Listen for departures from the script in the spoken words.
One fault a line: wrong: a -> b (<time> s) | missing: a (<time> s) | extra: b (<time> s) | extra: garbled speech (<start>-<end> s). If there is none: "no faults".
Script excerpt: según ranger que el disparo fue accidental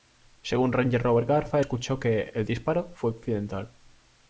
extra: robert garza escuchó (1.0 s)